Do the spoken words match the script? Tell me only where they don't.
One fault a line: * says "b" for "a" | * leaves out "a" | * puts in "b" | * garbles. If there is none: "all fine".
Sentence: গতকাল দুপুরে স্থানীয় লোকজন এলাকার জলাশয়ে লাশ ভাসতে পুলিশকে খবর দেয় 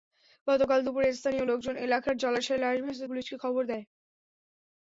all fine